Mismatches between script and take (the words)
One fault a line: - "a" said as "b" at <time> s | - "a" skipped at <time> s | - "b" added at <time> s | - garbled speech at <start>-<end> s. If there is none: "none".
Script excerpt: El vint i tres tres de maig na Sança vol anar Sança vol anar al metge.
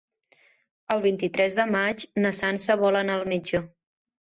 - "tres" skipped at 1.6 s
- "Sança vol anar" skipped at 3.2 s